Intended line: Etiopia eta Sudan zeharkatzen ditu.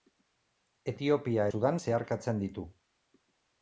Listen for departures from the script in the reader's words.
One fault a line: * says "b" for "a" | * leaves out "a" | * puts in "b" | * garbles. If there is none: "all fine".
* leaves out "eta"